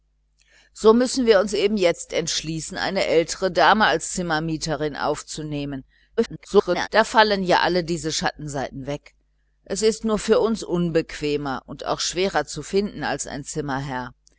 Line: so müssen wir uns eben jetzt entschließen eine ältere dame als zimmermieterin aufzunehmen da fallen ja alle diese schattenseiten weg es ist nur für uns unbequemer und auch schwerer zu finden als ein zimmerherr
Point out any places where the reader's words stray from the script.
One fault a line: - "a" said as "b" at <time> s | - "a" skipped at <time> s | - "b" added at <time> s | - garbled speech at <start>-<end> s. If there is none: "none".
- garbled speech at 6.2-6.9 s